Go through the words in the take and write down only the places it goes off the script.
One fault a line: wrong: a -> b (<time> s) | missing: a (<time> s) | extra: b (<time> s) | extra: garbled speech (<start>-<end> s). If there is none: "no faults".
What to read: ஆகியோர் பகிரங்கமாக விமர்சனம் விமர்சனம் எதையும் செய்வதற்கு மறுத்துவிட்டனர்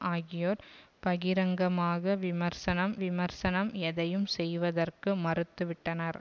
no faults